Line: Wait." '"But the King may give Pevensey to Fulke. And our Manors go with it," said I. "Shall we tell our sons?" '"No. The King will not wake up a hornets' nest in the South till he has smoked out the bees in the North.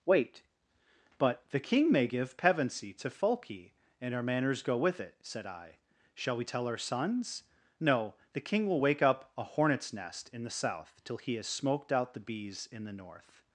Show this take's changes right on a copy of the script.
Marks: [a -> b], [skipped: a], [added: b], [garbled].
Wait." '"But the King may give Pevensey to Fulke. And our Manors go with it," said I. "Shall we tell our sons?" '"No. The King will [skipped: not] wake up a hornets' nest in the South till he has smoked out the bees in the North.